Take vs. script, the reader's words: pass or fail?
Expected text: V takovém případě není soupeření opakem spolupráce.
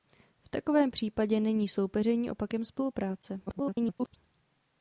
fail